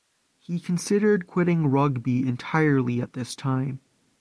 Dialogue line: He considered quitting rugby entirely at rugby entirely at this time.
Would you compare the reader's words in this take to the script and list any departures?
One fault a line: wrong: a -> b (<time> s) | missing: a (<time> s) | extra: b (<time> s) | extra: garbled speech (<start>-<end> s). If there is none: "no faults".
missing: rugby entirely at (3.1 s)